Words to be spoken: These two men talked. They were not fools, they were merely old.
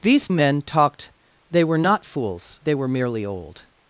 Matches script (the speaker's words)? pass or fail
fail